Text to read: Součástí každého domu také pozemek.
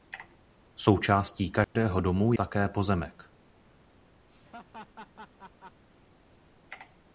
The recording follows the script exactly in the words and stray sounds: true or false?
false